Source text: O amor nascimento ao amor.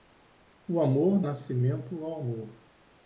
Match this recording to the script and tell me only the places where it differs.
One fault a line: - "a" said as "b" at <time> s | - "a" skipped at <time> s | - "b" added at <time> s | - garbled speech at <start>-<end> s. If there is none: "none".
none